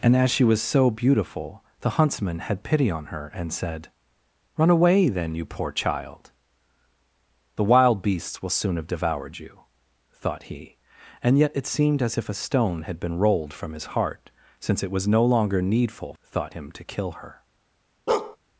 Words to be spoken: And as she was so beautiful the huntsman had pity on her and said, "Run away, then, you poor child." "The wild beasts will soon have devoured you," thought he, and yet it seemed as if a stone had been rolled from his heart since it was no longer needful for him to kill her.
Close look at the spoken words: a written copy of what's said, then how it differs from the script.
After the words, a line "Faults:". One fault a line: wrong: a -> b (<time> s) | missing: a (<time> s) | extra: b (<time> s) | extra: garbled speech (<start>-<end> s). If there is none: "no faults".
And as she was so beautiful the huntsman had pity on her and said, "Run away, then, you poor child." "The wild beasts will soon have devoured you," thought he, and yet it seemed as if a stone had been rolled from his heart since it was no longer needful thought him to kill her.
Faults:
wrong: for -> thought (16.2 s)